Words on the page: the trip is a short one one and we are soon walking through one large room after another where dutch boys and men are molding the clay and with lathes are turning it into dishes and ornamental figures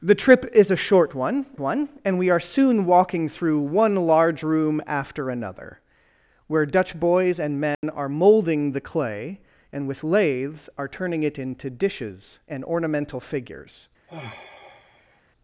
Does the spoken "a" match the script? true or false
true